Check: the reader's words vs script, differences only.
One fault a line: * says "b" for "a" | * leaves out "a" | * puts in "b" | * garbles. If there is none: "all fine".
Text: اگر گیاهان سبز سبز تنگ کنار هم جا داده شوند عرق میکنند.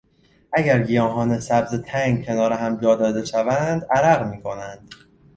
* leaves out "سبز"